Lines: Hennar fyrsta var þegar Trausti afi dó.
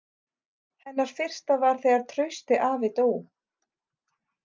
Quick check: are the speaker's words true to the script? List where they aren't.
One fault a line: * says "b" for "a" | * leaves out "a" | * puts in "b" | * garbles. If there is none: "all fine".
all fine